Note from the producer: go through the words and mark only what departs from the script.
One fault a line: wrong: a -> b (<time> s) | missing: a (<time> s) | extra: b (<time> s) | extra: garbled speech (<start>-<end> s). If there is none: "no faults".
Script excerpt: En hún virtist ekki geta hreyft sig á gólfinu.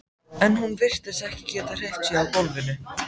no faults